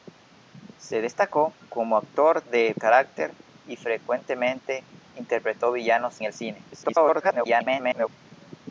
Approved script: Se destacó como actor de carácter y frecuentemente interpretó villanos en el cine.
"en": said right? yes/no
no